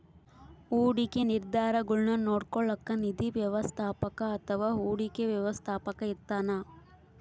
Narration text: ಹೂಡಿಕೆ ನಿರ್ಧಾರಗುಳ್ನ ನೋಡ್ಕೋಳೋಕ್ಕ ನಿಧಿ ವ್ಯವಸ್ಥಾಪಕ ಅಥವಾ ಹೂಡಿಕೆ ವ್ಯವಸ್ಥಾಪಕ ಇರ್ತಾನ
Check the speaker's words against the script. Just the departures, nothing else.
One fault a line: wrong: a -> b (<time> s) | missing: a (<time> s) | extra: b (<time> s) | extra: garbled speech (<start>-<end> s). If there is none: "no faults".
no faults